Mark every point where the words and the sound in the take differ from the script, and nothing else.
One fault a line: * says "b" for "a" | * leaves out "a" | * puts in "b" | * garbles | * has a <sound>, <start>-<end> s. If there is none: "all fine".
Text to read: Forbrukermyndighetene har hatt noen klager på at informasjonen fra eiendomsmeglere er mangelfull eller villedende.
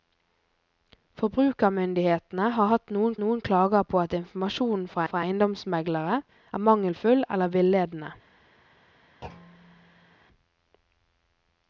* puts in "noen"
* puts in "fra"
* has a thud, 9.2-10.2 s